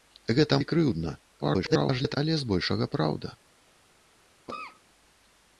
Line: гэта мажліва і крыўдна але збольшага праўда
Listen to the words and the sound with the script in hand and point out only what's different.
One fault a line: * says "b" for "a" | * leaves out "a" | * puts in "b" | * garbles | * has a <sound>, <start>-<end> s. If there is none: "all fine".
* leaves out "мажліва"
* garbles
* has a cough, 4.5-4.8 s